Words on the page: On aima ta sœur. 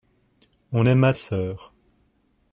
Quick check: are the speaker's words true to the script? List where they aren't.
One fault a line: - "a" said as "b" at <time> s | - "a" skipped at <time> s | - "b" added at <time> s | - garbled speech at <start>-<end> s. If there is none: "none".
- "ta" skipped at 1.1 s